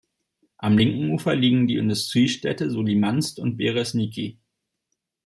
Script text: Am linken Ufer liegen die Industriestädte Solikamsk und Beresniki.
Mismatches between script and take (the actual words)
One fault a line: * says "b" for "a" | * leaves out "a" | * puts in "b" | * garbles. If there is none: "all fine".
all fine